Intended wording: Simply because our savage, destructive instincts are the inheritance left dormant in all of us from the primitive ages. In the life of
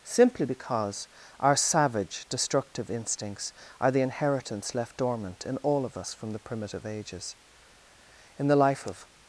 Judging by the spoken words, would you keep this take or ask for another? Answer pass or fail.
pass